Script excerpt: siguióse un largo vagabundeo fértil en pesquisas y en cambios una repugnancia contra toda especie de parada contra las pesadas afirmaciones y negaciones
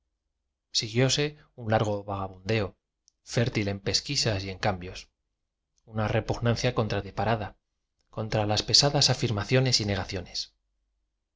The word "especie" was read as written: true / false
false